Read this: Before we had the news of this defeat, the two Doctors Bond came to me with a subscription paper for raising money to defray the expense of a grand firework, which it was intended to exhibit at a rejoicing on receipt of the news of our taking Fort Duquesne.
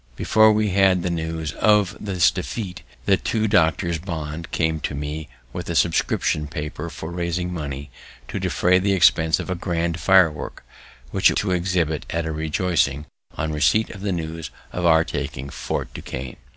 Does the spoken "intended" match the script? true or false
false